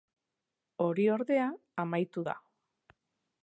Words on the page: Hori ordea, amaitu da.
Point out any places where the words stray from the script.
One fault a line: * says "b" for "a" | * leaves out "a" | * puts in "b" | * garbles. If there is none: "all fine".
all fine